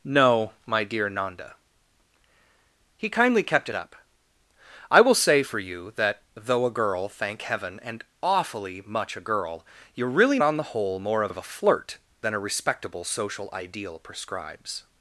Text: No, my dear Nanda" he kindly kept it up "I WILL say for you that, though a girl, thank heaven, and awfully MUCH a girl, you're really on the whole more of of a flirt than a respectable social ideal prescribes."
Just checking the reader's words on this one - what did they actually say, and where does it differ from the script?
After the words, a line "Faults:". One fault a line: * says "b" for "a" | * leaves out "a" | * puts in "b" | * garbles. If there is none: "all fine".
No, my dear Nanda" he kindly kept it up "I WILL say for you that, though a girl, thank heaven, and awfully MUCH a girl, you're really on the whole more of of a flirt than a respectable social ideal prescribes."
Faults:
all fine